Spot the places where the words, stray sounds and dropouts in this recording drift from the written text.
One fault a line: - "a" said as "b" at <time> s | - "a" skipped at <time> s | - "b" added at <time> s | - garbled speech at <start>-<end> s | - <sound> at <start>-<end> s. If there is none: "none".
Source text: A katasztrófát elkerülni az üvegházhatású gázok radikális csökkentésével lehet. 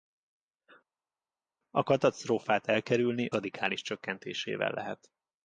- "az üvegházhatású gázok" skipped at 3.3 s